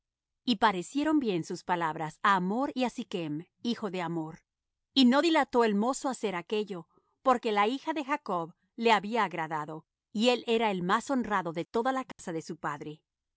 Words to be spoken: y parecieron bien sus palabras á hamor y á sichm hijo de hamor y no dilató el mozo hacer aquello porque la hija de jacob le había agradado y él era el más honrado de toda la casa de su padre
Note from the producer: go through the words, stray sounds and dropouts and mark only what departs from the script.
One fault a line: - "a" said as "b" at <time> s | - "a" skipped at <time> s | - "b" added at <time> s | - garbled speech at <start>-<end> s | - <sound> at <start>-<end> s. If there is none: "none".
- dropout at 12.1-12.2 s